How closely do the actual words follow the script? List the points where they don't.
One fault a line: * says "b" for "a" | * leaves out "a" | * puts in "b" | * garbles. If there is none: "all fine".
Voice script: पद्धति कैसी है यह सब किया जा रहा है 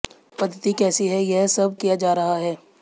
all fine